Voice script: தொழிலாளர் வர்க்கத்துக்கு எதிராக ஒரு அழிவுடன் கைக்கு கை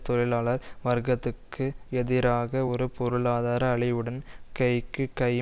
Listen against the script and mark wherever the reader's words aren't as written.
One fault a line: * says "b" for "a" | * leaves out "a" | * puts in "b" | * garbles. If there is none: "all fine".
* puts in "பொருளாதார"